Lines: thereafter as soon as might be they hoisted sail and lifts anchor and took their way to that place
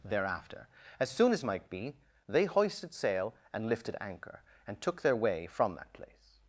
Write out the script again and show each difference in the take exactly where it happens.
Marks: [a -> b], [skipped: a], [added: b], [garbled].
thereafter as soon as might be they hoisted sail and [lifts -> lifted] anchor and took their way [to -> from] that place